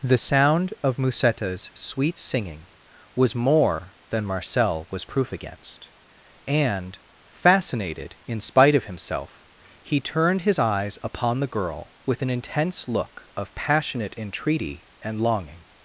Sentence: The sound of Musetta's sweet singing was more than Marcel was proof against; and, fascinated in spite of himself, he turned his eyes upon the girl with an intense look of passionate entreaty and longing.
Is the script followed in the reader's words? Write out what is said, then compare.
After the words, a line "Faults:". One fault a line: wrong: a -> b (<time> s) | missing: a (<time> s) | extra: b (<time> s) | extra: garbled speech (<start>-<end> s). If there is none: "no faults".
The sound of Musetta's sweet singing was more than Marcel was proof against; and, fascinated in spite of himself, he turned his eyes upon the girl with an intense look of passionate entreaty and longing.
Faults:
no faults